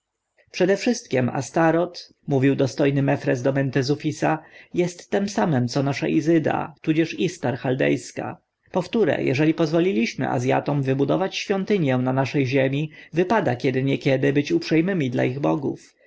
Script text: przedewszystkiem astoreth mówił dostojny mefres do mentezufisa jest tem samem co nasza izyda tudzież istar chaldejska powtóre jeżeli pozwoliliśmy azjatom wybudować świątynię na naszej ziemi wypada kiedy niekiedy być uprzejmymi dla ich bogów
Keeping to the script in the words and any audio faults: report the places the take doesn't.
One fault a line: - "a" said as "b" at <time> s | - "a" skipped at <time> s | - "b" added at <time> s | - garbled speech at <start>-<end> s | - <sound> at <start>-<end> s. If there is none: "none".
none